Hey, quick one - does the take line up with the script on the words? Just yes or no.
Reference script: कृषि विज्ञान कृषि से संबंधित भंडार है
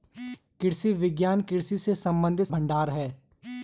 yes